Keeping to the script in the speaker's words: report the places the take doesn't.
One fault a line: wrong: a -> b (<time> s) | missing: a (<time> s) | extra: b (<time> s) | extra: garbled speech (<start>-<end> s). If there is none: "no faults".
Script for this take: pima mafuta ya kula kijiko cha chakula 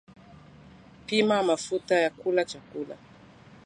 missing: kijiko cha (2.5 s)